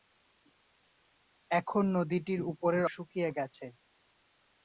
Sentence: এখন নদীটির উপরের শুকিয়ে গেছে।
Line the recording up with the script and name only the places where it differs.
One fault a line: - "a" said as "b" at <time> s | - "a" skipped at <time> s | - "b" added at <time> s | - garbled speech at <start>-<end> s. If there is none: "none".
none